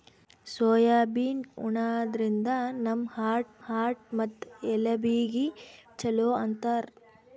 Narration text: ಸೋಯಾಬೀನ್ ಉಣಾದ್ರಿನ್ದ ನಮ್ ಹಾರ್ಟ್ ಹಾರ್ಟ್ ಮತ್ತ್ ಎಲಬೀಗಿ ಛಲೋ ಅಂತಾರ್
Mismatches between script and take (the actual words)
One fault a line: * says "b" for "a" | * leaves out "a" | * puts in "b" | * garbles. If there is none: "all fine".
all fine